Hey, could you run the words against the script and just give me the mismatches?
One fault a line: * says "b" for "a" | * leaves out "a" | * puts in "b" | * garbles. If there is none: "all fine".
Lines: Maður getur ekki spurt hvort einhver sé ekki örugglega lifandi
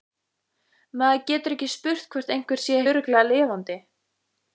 * leaves out "ekki"